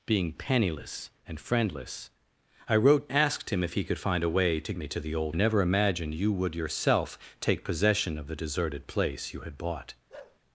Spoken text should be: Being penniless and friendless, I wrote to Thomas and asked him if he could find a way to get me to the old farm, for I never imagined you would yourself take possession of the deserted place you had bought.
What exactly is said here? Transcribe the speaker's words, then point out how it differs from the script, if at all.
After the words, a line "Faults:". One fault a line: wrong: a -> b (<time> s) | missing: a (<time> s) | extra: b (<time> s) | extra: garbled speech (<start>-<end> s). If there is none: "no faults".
Being penniless and friendless, I wrote asked him if he could find a way to me to the old never imagined you would yourself take possession of the deserted place you had bought.
Faults:
missing: to Thomas and (3.1 s)
missing: get (4.7 s)
missing: farm for I (5.4 s)